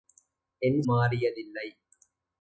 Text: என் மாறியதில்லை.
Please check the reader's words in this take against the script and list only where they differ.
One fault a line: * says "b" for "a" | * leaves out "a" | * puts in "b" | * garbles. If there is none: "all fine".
all fine